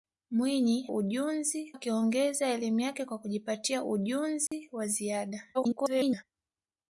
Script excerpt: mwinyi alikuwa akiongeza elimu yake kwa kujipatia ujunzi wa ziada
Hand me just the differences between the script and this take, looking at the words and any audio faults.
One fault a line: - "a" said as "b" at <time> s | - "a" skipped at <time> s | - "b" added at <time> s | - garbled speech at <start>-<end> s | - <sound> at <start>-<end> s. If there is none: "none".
- "alikuwa" said as "ujunzi" at 0.9 s
- dropout at 4.5-4.5 s
- garbled speech at 5.5-6.2 s